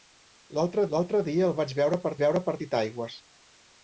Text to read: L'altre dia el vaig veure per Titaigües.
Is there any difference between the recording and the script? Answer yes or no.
yes